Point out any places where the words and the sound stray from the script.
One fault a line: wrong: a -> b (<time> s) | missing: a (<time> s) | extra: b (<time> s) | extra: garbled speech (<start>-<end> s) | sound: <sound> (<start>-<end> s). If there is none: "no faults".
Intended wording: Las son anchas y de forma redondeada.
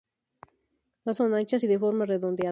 no faults